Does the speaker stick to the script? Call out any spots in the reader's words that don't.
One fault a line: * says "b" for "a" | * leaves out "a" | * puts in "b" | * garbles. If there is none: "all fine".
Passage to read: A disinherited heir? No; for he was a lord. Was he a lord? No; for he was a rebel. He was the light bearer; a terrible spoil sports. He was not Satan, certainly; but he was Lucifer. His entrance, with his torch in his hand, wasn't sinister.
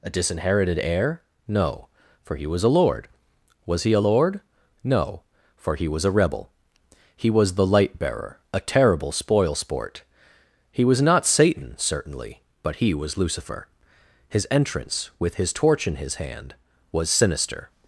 * says "sport" for "sports"
* says "was" for "wasn't"